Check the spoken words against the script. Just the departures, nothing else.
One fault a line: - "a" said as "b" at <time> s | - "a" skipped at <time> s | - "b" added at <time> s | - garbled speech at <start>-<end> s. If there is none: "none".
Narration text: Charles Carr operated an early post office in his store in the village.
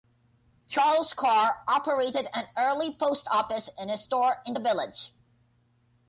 none